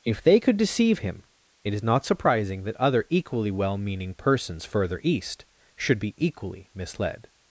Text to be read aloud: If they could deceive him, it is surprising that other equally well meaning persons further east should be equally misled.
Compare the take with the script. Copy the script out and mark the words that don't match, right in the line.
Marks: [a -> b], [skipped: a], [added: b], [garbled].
If they could deceive him, it is [added: not] surprising that other equally well meaning persons further east should be equally misled.